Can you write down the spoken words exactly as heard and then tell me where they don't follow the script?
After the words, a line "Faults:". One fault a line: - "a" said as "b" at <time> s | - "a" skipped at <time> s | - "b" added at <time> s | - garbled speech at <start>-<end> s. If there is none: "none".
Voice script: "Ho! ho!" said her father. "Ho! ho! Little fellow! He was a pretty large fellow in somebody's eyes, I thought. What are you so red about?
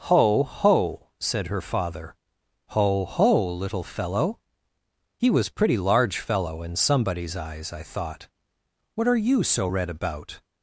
"Ho! ho!" said her father. "Ho! ho! Little fellow! He was pretty large fellow in somebody's eyes, I thought. What are you so red about?
Faults:
- "a" skipped at 5.5 s